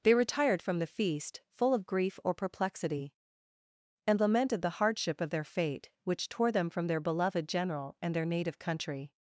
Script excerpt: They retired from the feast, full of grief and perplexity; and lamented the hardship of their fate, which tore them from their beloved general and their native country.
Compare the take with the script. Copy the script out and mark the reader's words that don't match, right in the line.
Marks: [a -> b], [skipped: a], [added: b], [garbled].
They retired from the feast, full of grief [and -> or] perplexity; and lamented the hardship of their fate, which tore them from their beloved general and their native country.